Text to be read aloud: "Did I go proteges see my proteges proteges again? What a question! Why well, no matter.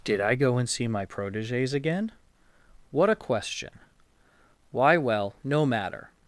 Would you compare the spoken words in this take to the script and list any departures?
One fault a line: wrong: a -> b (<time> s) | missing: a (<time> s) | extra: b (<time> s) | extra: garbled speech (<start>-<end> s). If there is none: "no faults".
wrong: proteges -> and (0.6 s)
missing: proteges (1.7 s)